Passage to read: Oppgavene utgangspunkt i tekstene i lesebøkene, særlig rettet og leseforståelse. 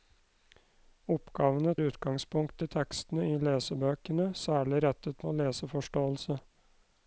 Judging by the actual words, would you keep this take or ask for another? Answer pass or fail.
pass